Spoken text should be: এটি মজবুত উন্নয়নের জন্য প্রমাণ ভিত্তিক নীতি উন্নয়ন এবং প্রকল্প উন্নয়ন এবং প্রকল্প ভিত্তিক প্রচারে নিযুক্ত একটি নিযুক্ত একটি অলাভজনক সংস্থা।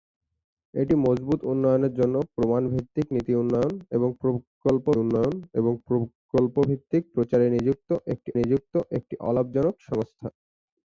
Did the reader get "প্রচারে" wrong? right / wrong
right